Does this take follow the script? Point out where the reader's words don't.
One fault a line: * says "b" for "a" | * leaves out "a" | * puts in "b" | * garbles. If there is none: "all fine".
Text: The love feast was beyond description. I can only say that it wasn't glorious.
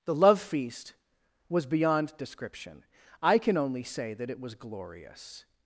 * says "was" for "wasn't"